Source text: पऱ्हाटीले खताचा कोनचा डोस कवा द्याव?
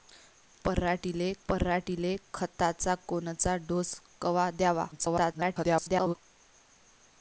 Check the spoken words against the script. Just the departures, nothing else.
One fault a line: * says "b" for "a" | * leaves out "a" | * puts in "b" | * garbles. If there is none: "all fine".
* puts in "पऱ्हाटीले"
* garbles